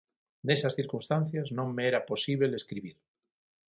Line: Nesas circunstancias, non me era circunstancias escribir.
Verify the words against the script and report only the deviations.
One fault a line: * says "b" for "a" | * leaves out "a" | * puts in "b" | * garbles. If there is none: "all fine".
* says "posíbel" for "circunstancias"